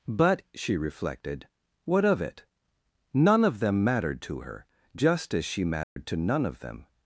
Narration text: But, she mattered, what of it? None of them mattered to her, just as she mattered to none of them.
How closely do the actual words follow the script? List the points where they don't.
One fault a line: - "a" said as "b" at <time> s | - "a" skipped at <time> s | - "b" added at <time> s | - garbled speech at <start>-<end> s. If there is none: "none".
- "mattered" said as "reflected" at 0.8 s